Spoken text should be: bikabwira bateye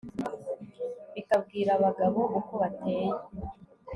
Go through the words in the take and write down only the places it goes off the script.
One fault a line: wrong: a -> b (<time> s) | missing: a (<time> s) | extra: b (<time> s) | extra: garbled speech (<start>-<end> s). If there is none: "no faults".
extra: abagabo uko (1.8 s)